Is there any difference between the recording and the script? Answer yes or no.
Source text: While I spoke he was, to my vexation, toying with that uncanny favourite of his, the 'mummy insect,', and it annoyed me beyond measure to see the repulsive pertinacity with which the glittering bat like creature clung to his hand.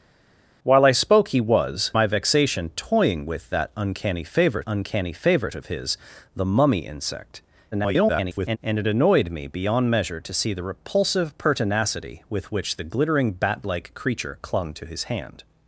yes